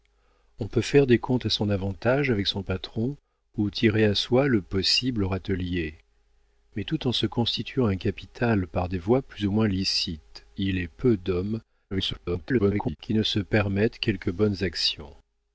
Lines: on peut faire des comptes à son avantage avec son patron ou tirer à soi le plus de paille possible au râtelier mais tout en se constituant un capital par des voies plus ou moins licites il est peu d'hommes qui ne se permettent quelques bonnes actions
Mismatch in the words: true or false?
true